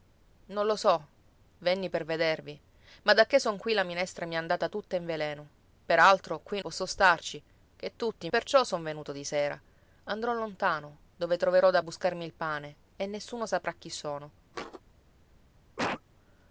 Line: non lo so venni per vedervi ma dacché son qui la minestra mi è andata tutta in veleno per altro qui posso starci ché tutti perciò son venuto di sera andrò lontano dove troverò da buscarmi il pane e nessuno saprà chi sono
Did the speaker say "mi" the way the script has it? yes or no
yes